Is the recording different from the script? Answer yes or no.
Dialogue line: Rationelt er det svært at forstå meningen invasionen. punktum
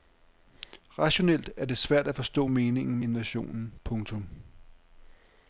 no